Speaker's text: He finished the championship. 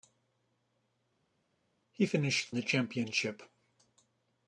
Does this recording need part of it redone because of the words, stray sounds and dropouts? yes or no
no